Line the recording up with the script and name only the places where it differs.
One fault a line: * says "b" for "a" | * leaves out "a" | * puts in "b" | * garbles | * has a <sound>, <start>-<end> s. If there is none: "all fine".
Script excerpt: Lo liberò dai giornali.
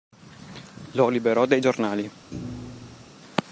* has a thud, 2.3-3.0 s